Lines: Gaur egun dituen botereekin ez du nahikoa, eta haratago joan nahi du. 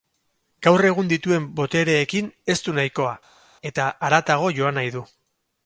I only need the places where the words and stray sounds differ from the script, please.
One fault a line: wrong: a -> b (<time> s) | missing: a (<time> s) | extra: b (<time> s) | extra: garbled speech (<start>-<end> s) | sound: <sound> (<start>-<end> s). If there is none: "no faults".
no faults